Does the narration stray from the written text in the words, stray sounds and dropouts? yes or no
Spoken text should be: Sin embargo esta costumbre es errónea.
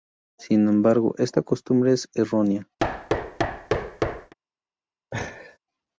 yes